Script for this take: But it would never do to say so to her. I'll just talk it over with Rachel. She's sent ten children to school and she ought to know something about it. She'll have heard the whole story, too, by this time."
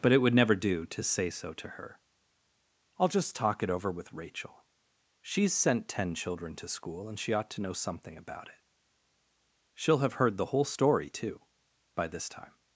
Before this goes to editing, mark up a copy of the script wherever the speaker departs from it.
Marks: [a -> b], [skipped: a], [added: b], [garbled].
But it would never do to say so to her. I'll just talk it over with Rachel. She's sent ten children to school and she ought to know something about it. She'll have heard the whole story, too, by this time."